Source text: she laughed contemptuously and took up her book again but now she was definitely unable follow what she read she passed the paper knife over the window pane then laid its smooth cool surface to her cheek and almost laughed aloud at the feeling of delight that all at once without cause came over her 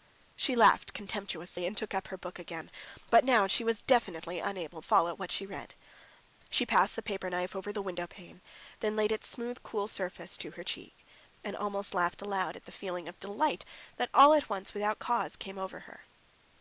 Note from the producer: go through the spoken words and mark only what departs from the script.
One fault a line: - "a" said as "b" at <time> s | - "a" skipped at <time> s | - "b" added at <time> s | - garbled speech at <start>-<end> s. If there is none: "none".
none